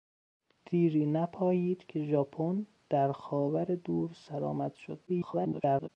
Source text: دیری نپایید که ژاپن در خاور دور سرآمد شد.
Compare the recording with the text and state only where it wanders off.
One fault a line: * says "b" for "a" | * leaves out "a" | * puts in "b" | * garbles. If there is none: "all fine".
* garbles